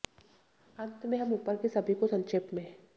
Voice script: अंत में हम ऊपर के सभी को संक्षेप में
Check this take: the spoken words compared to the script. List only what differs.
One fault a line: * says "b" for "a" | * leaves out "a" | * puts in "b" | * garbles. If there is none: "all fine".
all fine